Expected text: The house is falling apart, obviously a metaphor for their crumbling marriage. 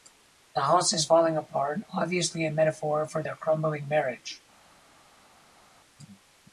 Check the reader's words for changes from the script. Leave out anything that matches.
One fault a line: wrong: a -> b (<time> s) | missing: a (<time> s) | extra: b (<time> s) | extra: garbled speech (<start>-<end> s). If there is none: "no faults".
no faults